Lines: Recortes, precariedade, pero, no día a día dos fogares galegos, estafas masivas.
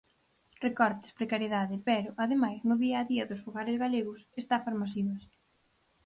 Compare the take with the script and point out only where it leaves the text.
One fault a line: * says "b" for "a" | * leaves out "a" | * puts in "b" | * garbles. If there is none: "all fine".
* puts in "ademais"